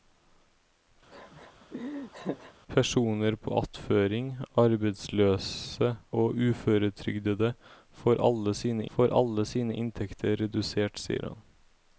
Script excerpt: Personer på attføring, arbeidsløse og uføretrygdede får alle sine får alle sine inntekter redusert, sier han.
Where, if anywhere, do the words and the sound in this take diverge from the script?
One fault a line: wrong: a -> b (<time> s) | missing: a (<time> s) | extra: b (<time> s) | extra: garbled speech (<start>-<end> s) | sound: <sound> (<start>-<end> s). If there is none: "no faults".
sound: laugh (1.1-2.5 s)